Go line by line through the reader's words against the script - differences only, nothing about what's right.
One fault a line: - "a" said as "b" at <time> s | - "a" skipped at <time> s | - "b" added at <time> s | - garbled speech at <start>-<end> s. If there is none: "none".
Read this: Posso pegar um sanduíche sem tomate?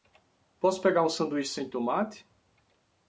none